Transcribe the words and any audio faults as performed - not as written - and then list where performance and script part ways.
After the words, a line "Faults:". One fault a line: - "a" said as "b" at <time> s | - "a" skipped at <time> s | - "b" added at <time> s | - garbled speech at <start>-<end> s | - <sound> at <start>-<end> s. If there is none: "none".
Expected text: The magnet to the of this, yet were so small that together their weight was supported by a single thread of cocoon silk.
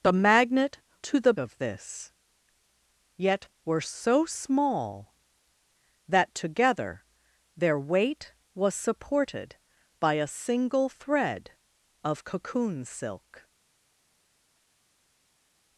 The magnet to the of this, yet were so small that together their weight was supported by a single thread of cocoon silk.
Faults:
none